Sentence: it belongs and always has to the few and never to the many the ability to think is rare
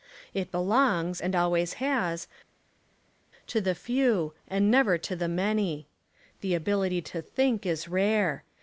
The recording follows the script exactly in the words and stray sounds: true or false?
true